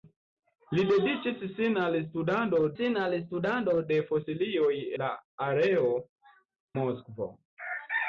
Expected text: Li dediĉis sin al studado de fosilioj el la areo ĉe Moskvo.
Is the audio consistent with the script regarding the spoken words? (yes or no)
no